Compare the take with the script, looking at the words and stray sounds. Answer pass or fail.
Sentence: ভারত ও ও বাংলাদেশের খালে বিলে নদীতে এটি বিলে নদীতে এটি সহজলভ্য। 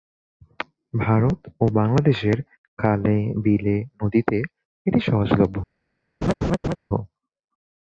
fail